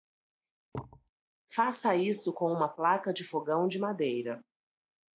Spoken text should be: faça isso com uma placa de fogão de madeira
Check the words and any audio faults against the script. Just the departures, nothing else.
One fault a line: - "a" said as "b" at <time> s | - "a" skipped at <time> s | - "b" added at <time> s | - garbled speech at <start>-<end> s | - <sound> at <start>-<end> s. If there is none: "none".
- thud at 0.7-1.1 s